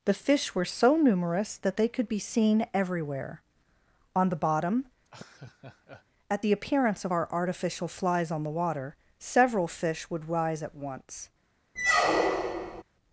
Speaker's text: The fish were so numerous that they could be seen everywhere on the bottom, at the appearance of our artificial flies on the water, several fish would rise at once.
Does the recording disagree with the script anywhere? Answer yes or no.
no